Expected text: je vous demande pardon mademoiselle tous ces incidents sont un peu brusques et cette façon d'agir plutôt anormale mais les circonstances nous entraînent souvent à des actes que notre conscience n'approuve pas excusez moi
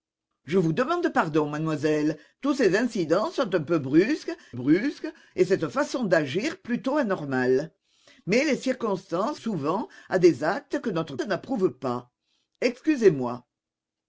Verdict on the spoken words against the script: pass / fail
fail